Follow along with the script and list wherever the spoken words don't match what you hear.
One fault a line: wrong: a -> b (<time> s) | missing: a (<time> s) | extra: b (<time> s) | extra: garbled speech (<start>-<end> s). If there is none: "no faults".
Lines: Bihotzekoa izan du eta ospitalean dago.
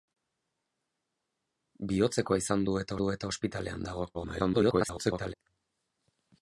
extra: du eta (3.0 s)
extra: garbled speech (4.1-5.3 s)